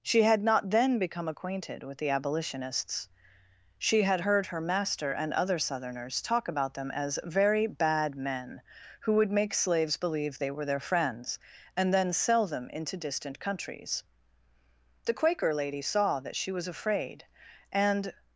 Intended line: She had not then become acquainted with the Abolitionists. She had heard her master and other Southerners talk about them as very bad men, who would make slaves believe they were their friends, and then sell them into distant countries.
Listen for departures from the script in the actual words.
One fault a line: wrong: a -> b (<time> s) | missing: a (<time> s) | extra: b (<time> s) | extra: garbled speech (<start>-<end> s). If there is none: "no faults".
extra: The Quaker lady saw that she was afraid and (15.0 s)